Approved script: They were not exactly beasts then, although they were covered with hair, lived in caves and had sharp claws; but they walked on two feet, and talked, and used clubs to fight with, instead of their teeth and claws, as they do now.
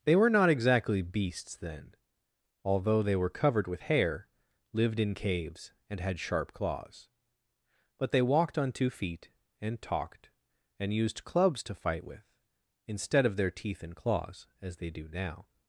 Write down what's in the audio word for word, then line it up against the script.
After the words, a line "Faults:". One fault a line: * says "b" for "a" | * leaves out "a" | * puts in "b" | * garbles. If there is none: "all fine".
They were not exactly beasts then, although they were covered with hair, lived in caves and had sharp claws; but they walked on two feet, and talked, and used clubs to fight with, instead of their teeth and claws, as they do now.
Faults:
all fine